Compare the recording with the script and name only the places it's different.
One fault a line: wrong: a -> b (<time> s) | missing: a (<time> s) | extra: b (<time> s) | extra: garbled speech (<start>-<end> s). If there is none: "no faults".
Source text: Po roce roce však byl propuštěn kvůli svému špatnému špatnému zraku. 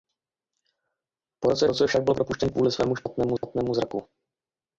no faults